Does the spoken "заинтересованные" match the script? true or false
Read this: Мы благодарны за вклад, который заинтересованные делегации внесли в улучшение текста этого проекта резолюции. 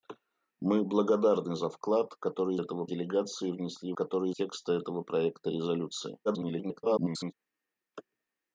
false